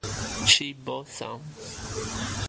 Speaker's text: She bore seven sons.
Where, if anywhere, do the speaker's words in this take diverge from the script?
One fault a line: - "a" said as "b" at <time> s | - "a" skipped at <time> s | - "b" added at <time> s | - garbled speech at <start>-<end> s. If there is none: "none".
- "seven" skipped at 1.1 s